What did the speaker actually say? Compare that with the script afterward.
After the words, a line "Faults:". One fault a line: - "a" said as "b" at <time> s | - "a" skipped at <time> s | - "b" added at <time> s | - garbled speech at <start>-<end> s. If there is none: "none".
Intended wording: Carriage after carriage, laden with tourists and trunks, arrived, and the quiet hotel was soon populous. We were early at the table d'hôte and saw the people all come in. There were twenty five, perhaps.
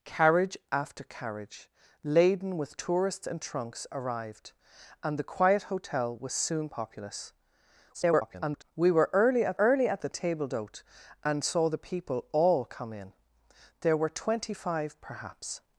Carriage after carriage, laden with tourists and trunks, arrived, and the quiet hotel was soon populous. [garbled] We were early at early at the table d'hôte and saw the people all come in. There were twenty five, perhaps.
Faults:
- garbled speech at 7.9-8.7 s
- "early at" added at 9.6 s